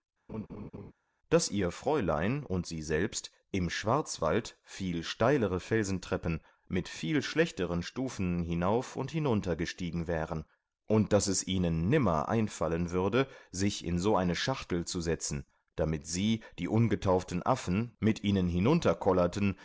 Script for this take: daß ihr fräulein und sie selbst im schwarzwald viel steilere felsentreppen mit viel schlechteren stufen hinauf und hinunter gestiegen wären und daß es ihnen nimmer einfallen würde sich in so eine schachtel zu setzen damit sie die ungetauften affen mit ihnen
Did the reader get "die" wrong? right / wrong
right